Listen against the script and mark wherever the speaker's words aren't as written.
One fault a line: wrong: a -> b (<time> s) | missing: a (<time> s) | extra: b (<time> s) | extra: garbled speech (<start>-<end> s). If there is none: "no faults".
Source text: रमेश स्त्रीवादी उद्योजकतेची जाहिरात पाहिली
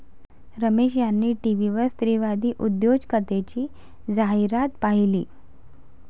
extra: यांनी टीव्हीवर (1.0 s)